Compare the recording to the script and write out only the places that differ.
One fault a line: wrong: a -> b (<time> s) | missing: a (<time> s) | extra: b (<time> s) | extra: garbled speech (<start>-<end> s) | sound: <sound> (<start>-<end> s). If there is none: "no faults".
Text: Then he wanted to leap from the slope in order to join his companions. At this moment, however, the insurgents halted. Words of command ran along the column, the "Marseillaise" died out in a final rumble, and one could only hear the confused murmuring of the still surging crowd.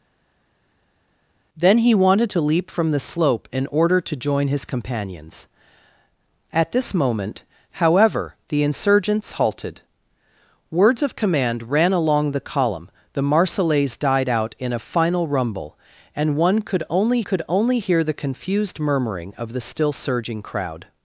extra: could only (17.2 s)